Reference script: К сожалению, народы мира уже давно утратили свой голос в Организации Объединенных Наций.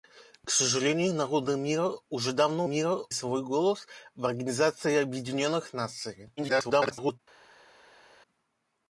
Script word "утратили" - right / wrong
wrong